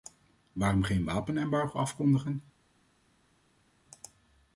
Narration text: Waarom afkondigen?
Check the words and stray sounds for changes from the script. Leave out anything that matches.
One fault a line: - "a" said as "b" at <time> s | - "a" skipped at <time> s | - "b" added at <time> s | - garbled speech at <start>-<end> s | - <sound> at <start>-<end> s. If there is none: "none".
- "geen wapenembargo" added at 0.8 s